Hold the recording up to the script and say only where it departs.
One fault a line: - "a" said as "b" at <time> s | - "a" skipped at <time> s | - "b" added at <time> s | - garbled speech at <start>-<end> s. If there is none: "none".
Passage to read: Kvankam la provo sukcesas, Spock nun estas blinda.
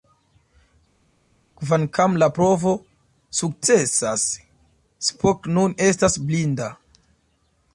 none